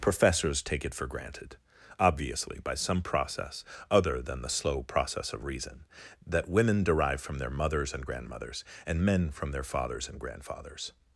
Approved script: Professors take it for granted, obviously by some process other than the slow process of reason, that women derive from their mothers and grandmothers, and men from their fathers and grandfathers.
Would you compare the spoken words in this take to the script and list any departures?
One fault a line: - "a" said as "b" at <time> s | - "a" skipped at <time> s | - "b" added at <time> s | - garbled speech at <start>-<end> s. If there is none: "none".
none